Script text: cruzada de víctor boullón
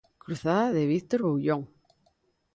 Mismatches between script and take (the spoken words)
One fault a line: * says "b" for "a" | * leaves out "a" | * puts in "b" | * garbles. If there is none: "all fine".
all fine